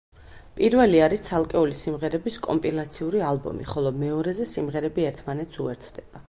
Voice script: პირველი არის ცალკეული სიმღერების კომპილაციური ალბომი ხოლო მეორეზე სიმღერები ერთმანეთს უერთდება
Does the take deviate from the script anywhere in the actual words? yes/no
no